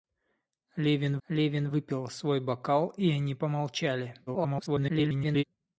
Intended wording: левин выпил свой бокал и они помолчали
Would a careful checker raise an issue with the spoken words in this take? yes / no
yes